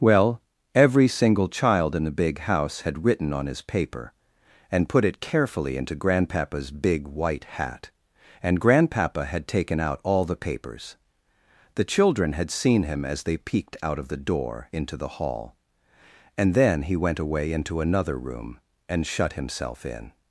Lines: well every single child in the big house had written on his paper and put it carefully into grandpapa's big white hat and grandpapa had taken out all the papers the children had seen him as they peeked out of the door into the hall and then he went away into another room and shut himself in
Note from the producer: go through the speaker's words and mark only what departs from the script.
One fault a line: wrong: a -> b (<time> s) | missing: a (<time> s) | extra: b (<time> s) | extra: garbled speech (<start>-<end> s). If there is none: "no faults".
no faults